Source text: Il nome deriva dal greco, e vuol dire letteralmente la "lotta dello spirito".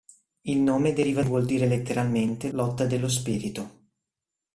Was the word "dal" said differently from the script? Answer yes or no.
yes